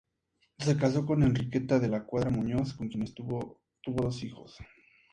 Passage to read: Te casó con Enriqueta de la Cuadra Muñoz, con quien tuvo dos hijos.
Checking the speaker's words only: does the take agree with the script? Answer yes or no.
no